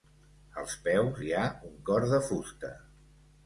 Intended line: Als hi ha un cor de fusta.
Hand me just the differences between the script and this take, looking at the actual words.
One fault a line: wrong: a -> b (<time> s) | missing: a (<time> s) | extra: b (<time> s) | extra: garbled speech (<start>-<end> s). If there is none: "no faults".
extra: peus (0.9 s)